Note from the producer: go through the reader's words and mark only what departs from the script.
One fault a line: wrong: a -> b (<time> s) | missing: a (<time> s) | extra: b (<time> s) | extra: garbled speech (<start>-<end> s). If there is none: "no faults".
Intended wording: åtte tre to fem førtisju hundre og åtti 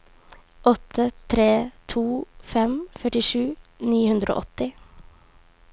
extra: ni (3.9 s)